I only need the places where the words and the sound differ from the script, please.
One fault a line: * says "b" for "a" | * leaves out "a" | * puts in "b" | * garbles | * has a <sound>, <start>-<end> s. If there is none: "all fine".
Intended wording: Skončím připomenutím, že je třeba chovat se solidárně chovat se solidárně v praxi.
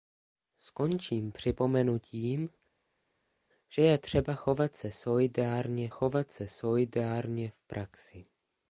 all fine